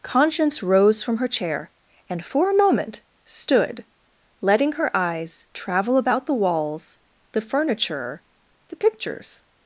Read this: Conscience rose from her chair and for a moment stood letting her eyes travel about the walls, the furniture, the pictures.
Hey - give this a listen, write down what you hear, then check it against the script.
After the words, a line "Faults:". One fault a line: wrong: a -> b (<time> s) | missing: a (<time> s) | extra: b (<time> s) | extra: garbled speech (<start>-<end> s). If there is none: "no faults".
Conscience rose from her chair and for a moment stood letting her eyes travel about the walls, the furniture, the pictures.
Faults:
no faults